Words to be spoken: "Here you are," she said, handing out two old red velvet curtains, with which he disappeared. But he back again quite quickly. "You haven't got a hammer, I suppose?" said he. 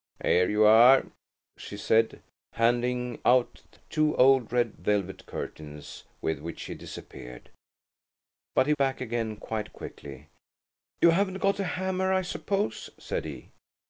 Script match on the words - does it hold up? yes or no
yes